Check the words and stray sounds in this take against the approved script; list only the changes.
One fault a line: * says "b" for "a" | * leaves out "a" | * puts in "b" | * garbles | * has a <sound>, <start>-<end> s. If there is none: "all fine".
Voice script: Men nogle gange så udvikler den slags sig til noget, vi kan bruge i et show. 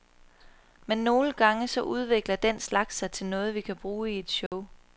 * has a dropout, 4.5-4.5 s